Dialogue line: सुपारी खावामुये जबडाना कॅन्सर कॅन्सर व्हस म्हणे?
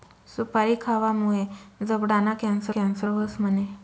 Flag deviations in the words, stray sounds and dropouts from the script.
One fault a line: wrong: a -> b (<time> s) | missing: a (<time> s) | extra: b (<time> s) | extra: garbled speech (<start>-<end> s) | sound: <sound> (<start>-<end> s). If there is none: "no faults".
no faults